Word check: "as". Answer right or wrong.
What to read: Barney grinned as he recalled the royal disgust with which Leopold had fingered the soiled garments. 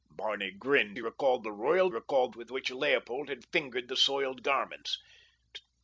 wrong